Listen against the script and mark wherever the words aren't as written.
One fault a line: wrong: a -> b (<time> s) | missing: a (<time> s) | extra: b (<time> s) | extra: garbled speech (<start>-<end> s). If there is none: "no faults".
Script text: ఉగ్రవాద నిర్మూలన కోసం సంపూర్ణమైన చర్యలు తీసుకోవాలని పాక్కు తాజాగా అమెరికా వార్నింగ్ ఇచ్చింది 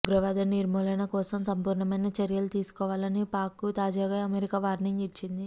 no faults